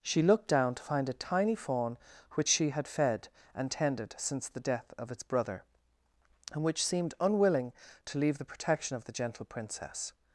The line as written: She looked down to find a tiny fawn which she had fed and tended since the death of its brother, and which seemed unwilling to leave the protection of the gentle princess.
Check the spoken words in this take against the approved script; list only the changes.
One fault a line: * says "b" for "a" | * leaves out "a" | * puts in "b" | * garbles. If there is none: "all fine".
all fine